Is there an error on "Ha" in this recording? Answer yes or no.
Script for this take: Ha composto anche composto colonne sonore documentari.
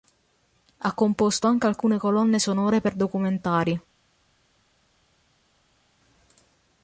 no